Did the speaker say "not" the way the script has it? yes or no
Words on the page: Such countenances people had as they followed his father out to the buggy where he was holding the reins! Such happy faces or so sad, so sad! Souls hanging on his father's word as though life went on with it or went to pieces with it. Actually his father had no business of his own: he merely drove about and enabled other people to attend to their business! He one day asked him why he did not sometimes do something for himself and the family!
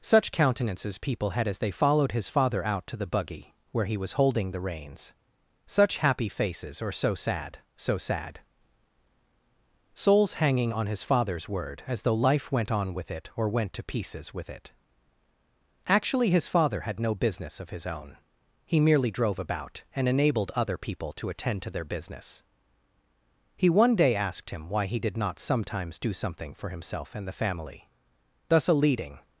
yes